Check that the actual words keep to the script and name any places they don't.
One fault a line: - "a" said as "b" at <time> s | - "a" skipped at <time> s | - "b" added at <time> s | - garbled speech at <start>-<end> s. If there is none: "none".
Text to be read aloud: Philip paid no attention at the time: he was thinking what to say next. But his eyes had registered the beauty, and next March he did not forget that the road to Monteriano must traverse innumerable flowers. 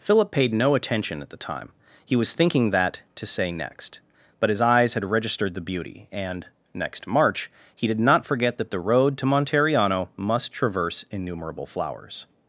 - "what" said as "that" at 2.7 s